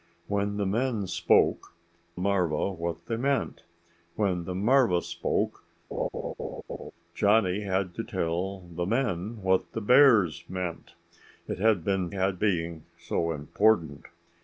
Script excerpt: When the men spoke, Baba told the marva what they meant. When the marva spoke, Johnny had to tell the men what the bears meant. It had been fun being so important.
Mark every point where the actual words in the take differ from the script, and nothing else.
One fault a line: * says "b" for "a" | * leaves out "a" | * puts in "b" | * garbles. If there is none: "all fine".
* leaves out "Baba told the"
* says "had" for "fun"